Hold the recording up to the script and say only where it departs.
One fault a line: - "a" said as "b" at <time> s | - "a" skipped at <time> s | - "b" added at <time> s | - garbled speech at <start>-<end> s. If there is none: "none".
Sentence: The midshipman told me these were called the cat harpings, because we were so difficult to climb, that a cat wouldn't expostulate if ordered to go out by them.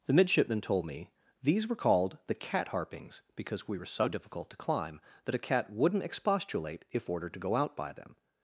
none